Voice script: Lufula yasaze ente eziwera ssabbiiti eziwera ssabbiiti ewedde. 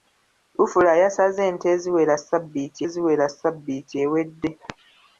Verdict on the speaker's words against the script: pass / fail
pass